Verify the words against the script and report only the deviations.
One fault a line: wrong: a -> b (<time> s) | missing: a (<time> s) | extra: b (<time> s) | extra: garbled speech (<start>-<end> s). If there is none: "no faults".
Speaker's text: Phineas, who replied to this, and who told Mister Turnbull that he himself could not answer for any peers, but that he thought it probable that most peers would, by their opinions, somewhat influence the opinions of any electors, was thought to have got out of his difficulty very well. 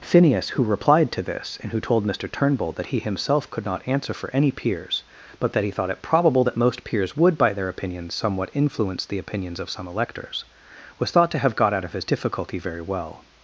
wrong: any -> some (9.7 s)